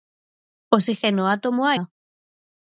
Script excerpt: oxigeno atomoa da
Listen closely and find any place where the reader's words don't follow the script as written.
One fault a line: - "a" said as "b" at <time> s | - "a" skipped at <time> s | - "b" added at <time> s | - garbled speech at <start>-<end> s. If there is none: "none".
none